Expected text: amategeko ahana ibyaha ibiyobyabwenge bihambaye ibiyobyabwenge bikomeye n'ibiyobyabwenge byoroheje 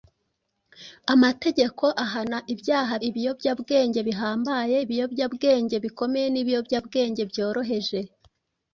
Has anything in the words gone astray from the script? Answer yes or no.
no